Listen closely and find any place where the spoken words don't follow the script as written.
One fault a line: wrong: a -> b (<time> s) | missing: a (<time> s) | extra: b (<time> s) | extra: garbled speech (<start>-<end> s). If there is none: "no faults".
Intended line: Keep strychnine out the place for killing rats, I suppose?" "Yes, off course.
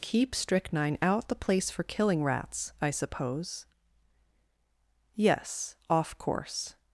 no faults